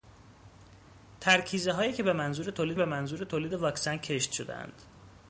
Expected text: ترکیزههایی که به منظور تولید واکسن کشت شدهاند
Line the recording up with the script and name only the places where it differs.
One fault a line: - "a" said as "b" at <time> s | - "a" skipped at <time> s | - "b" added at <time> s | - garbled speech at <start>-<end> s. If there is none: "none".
- "به منظور تولید" added at 2.8 s